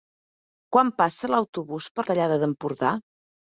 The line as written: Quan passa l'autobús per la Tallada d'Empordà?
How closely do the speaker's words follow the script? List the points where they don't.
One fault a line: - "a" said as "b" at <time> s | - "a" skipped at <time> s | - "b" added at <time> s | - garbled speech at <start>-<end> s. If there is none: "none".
- "la" skipped at 2.1 s